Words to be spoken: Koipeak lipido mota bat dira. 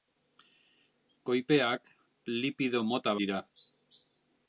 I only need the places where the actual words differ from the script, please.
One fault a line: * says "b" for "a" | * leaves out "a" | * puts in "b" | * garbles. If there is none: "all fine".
* leaves out "bat"